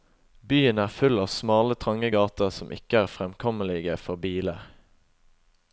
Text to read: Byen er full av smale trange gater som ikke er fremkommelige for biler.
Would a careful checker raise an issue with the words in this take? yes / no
no